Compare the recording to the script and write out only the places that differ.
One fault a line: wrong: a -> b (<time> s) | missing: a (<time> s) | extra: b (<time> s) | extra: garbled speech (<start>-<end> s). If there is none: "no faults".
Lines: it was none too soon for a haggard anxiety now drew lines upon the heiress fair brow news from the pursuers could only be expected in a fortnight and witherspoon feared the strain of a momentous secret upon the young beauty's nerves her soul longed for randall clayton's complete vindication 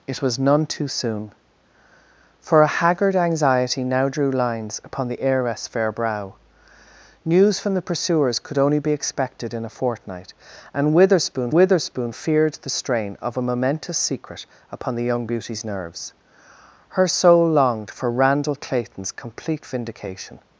extra: witherspoon (11.5 s)